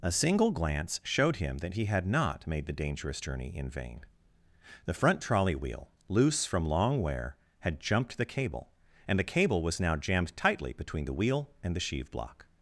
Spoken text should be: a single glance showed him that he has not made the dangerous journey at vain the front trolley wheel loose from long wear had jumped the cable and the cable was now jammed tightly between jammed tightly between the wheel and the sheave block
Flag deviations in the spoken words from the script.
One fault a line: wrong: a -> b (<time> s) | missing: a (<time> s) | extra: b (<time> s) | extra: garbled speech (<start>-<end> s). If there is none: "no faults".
wrong: has -> had (1.9 s)
wrong: at -> in (3.6 s)
missing: jammed tightly between (11.1 s)